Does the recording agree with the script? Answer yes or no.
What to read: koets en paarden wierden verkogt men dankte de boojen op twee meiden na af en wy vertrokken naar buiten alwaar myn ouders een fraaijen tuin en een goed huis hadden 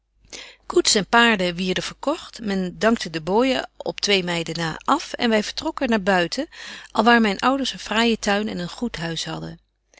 yes